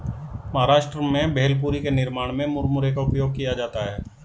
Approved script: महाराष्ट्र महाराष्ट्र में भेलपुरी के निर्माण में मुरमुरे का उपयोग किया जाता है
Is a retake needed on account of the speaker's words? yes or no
yes